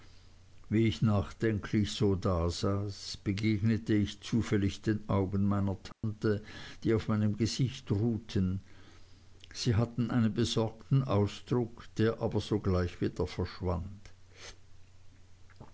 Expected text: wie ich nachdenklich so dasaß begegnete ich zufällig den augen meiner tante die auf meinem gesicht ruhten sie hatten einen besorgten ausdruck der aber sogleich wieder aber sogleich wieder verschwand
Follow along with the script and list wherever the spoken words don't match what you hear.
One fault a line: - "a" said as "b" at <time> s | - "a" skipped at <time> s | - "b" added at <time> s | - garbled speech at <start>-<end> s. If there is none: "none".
- "aber sogleich wieder" skipped at 13.3 s